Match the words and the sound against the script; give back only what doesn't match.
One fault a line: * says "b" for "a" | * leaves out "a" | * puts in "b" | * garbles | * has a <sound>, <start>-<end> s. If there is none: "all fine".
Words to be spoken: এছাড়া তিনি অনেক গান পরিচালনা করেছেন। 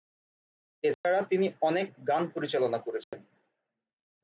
* has a dropout, 0.9-1.0 s
* has a dropout, 3.0-3.1 s